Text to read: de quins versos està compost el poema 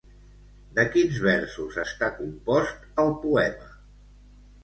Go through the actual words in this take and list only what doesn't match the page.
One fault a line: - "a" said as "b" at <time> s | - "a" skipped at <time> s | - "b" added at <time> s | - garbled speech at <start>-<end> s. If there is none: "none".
none